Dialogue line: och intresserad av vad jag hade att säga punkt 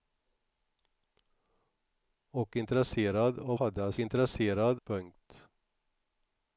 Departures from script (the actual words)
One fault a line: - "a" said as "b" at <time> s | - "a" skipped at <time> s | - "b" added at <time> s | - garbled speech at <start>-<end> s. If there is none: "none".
- "vad jag" skipped at 3.6 s
- "säga" said as "intresserad" at 4.0 s